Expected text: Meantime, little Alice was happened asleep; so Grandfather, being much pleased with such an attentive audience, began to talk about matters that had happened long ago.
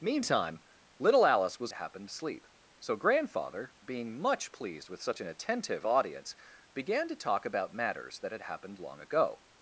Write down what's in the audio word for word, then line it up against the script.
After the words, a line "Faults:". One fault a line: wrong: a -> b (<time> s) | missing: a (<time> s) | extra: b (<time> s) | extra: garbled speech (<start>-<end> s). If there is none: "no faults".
Meantime, little Alice was happened asleep; so Grandfather, being much pleased with such an attentive audience, began to talk about matters that had happened long ago.
Faults:
no faults